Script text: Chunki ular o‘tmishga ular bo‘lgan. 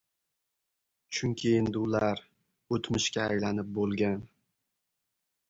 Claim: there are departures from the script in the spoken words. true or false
true